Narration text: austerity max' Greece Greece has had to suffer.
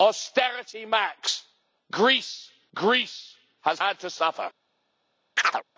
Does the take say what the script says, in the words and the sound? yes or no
no